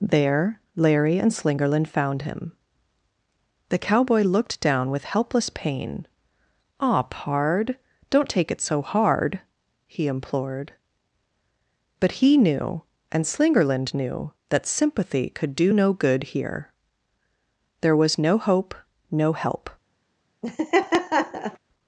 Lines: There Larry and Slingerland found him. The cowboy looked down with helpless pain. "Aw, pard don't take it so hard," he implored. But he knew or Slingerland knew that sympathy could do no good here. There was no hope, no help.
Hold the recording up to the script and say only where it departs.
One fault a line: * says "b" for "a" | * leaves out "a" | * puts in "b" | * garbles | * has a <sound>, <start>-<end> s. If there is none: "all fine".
* says "and" for "or"
* has a laugh, 20.4-21.6 s